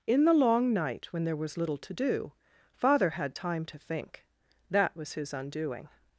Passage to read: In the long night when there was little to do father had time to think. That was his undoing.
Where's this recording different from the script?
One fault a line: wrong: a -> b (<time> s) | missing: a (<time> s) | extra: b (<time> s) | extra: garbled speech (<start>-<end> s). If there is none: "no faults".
no faults